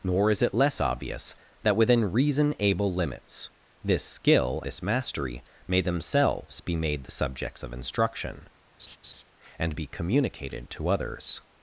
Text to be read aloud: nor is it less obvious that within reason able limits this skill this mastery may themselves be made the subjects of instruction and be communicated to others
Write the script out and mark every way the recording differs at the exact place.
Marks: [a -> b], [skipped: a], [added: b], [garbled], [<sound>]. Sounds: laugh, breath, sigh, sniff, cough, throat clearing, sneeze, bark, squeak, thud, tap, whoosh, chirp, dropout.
nor is it less obvious that within reason able limits this skill this mastery may themselves be made the subjects of instruction [laugh] and be communicated to others